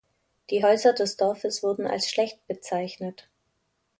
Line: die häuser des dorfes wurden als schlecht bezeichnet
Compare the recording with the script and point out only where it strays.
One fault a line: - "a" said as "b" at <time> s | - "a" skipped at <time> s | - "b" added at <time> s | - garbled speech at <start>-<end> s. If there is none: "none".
none